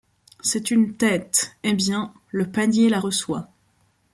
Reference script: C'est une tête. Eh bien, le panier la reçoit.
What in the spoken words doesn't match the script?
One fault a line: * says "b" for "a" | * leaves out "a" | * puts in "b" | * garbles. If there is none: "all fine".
all fine